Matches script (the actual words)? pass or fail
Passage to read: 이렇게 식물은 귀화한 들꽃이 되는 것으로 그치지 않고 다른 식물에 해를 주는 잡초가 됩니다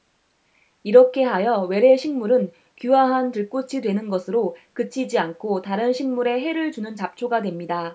fail